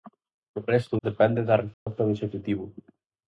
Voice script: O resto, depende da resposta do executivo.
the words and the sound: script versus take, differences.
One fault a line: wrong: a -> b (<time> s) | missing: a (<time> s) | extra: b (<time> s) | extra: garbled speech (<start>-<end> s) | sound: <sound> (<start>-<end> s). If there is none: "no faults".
sound: dropout (1.7-1.9 s)